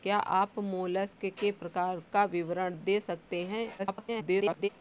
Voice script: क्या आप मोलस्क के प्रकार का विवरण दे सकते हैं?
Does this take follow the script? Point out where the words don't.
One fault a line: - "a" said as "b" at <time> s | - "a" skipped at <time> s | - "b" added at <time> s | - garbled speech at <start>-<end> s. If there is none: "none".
- garbled speech at 3.8-4.7 s